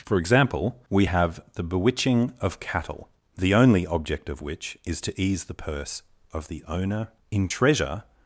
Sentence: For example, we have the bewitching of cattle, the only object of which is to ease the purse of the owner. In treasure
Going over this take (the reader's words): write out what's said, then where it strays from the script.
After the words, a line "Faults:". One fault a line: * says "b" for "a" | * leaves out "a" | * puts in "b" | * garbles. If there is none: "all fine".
For example, we have the bewitching of cattle, the only object of which is to ease the purse of the owner. In treasure
Faults:
all fine